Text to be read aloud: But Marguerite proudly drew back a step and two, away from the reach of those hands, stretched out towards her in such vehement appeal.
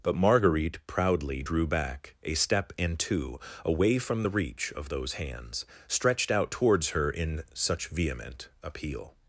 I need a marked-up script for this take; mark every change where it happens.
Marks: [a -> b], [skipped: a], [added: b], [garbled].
But Marguerite proudly drew back a step and two, away from the reach of those hands, stretched out towards her in such vehement appeal.